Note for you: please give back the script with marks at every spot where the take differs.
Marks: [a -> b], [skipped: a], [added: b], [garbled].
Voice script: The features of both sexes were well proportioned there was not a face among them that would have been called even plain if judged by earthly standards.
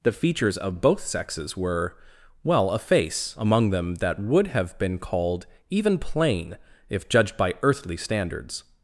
The features of both sexes were well [skipped: proportioned there was not] a face among them that would have been called even plain if judged by earthly standards.